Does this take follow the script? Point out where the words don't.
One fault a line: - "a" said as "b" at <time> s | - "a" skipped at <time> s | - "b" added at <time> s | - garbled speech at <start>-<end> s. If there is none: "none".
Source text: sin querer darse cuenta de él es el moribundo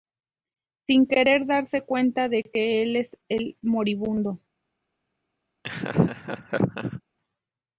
- "que" added at 2.4 s